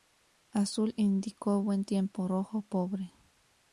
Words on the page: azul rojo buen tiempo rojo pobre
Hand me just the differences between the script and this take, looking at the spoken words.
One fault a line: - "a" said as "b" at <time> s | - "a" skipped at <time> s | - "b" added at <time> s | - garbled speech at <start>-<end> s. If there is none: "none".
- "rojo" said as "indicó" at 0.9 s